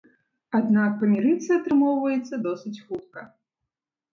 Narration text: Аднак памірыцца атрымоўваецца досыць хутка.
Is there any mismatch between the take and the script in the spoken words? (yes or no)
no